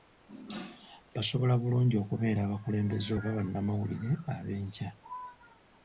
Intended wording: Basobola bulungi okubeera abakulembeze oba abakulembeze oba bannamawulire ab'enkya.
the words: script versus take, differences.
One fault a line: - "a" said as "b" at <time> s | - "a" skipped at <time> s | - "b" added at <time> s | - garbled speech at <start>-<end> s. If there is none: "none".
- "abakulembeze oba" skipped at 3.3 s